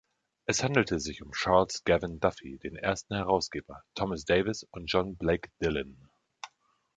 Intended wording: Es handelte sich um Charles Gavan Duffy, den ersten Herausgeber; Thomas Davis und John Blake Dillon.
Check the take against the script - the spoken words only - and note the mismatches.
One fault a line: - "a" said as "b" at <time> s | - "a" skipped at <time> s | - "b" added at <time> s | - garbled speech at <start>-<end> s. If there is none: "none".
none